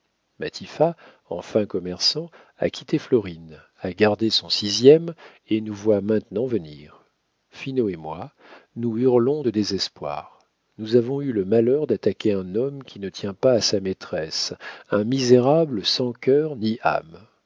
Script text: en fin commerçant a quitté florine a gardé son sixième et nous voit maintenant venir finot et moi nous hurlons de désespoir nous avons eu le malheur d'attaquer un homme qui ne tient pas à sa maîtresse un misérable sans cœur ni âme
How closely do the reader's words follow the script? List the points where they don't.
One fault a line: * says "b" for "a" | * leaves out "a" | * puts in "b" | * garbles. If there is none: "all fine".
all fine